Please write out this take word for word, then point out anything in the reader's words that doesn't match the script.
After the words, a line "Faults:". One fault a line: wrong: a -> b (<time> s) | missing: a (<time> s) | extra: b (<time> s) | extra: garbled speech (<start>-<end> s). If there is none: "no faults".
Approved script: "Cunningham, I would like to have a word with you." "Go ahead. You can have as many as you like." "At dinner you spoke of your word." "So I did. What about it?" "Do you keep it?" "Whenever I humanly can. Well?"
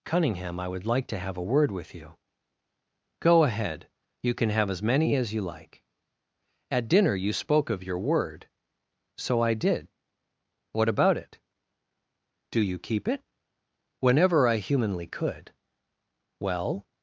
"Cunningham, I would like to have a word with you." "Go ahead. You can have as many as you like." "At dinner you spoke of your word." "So I did. What about it?" "Do you keep it?" "Whenever I humanly could. Well?"
Faults:
wrong: can -> could (15.1 s)